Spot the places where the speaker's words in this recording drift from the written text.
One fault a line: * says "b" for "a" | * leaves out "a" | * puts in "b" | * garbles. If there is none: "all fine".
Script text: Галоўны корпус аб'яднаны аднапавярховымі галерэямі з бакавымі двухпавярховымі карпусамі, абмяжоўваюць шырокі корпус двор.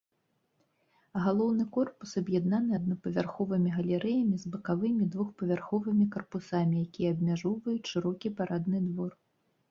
* puts in "якія"
* says "парадны" for "корпус"